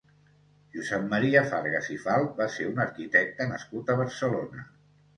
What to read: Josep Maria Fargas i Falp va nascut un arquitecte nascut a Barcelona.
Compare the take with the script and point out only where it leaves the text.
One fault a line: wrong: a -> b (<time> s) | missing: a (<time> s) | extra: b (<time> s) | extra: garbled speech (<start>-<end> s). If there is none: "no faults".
wrong: nascut -> ser (2.6 s)